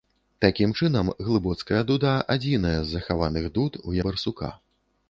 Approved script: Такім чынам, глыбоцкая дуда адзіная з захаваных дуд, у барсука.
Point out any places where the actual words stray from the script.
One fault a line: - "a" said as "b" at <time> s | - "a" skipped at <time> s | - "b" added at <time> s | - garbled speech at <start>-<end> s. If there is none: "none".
none